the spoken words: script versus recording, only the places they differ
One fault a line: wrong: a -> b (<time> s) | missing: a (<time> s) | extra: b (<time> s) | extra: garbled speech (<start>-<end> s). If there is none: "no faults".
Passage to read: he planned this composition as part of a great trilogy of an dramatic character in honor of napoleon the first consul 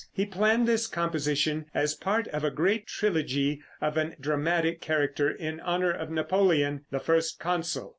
no faults